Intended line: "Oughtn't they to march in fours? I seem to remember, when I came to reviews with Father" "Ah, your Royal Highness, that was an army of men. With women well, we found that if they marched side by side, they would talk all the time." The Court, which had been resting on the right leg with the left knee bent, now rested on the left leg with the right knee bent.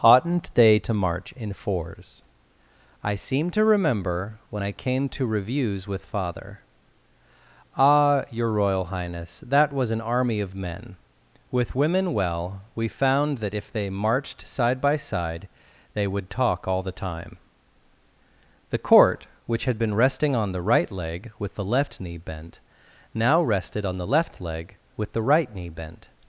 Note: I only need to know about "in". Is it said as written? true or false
true